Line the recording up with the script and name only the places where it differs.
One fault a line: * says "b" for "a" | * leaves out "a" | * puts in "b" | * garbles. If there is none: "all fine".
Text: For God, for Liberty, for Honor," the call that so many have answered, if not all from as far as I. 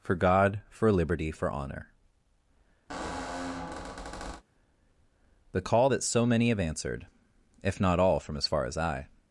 all fine